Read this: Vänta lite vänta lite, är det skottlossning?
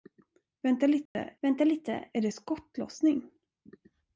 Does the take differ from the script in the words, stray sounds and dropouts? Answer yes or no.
yes